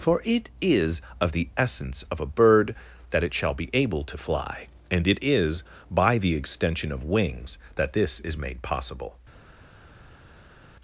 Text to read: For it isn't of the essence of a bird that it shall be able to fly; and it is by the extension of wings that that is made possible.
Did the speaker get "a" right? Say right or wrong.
right